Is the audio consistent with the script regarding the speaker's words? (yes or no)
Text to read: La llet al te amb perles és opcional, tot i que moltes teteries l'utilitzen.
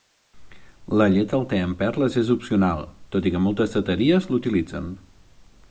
yes